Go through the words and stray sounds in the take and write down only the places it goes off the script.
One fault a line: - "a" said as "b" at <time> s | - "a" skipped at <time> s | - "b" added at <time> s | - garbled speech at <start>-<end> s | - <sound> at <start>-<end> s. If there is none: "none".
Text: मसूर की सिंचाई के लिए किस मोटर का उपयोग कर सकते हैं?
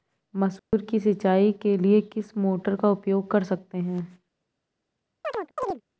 - dropout at 0.6-0.7 s
- chirp at 5.2-5.8 s